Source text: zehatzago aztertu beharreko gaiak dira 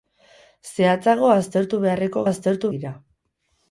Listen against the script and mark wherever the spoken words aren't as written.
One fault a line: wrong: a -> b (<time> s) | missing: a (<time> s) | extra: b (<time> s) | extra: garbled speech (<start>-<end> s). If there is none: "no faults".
wrong: gaiak -> aztertu (2.3 s)